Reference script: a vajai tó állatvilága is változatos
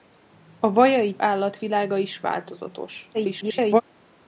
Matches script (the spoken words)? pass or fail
fail